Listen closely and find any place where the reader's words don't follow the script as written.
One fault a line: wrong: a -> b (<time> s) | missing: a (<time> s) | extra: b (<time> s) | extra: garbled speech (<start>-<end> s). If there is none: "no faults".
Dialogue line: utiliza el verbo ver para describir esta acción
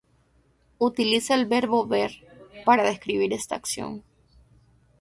no faults